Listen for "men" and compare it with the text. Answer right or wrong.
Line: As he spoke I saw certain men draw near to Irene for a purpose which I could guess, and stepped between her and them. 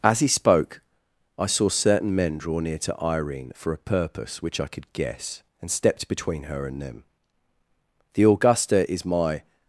right